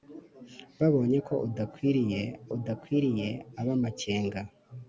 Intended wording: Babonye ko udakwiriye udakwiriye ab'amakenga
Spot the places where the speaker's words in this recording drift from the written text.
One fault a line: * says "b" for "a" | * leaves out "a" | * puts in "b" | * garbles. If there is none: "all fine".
all fine